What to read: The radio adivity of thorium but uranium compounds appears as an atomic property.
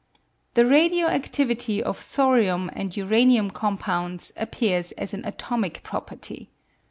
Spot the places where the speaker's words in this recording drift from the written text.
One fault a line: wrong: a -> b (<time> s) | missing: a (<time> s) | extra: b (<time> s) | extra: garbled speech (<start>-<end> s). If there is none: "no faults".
wrong: but -> and (2.7 s)